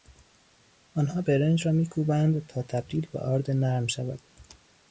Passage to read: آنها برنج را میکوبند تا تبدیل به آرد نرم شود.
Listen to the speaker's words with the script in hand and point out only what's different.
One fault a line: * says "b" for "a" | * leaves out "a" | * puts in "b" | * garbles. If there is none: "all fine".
all fine